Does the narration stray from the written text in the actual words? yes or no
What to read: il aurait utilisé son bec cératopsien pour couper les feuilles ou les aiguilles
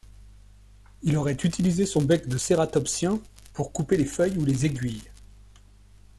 yes